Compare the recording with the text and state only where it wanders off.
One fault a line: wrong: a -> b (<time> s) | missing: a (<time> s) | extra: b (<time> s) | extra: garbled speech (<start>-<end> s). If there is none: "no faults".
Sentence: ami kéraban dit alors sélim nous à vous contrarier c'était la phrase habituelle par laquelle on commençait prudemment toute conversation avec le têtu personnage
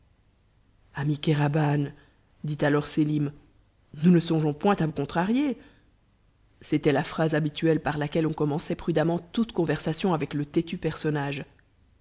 extra: ne songeons point (4.1 s)